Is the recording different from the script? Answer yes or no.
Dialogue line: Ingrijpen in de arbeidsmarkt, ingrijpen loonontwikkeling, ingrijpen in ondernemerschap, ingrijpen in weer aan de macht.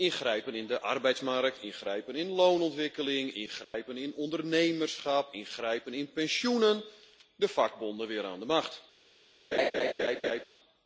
yes